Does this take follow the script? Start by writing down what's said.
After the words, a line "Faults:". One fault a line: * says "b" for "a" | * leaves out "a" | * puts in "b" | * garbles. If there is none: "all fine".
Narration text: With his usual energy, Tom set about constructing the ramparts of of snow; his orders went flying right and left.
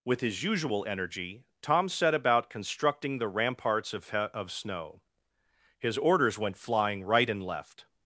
With his usual energy, Tom set about constructing the ramparts of of snow; his orders went flying right and left.
Faults:
all fine